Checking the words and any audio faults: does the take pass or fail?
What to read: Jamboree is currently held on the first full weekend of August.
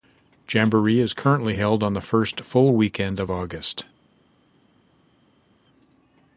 pass